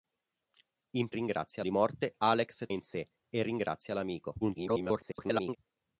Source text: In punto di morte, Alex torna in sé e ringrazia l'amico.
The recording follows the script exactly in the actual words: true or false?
false